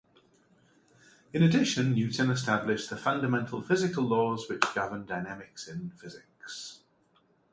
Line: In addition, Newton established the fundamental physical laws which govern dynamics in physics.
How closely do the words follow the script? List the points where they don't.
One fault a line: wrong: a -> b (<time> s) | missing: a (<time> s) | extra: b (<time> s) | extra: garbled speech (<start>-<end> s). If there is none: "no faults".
no faults